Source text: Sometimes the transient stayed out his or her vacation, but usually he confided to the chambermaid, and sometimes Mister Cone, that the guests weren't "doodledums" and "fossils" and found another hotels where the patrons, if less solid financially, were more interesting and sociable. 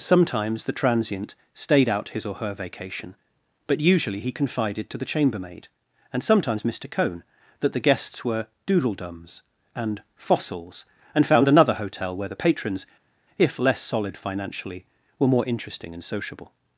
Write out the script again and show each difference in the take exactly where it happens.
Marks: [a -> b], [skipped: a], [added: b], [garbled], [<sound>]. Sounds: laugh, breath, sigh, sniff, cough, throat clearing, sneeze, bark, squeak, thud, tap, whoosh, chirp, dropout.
Sometimes the transient stayed out his or her vacation, but usually he confided to the chambermaid, and sometimes Mister Cone, that the guests [weren't -> were] "doodledums" and "fossils" and found another [hotels -> hotel] where the patrons, if less solid financially, were more interesting and sociable.